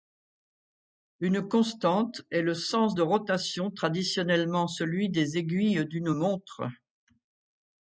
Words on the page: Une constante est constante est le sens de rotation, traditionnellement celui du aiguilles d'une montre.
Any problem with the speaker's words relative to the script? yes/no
yes